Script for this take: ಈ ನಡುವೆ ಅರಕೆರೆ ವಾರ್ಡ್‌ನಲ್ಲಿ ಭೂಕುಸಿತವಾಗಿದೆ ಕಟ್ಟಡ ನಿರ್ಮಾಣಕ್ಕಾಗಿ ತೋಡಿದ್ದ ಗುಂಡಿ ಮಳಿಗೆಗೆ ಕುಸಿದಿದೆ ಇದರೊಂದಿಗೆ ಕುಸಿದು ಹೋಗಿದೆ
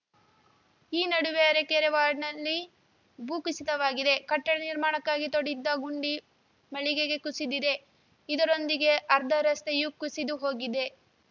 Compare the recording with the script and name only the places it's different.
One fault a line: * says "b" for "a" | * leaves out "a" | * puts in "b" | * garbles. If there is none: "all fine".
* puts in "ಅರ್ಧ ರಸ್ತೆಯೂ"